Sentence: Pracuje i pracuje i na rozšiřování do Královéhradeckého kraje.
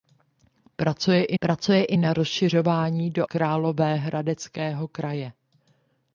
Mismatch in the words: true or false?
false